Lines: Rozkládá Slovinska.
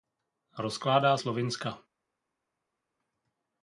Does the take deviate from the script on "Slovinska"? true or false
false